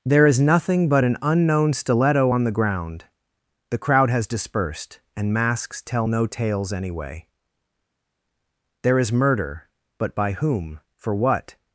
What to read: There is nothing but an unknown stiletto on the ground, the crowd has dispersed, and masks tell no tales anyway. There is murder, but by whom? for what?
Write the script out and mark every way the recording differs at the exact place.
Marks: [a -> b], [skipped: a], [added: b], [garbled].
There is nothing but an unknown stiletto on the ground, the crowd has dispersed, and masks tell no tales anyway. There is murder, but by whom? for what?